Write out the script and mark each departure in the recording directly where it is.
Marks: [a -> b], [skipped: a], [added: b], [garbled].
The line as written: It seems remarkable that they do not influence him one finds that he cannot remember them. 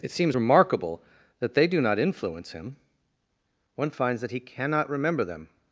It seems remarkable that they do not influence him one finds that he cannot remember them.